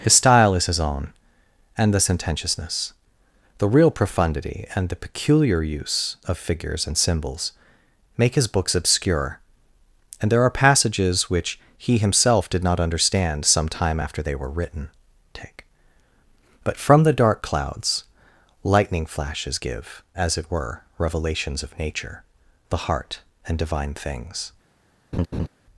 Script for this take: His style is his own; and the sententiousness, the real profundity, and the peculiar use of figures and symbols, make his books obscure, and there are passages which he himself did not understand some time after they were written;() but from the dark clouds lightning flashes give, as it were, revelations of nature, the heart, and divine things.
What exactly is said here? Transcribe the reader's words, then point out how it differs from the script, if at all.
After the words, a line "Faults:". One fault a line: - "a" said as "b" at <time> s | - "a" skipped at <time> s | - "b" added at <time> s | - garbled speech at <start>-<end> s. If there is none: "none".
His style is his own; and the sententiousness, the real profundity, and the peculiar use of figures and symbols, make his books obscure, and there are passages which he himself did not understand some time after they were written;() take but from the dark clouds lightning flashes give, as it were, revelations of nature, the heart, and divine things.
Faults:
- "take" added at 15.3 s